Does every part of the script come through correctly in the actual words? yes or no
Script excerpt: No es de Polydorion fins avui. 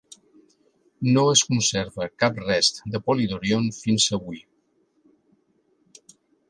no